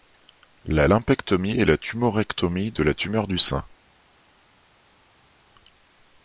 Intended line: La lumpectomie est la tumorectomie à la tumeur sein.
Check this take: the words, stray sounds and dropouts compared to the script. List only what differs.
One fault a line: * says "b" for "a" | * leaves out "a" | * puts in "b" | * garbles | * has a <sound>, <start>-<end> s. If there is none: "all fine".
* says "de" for "à"
* puts in "du"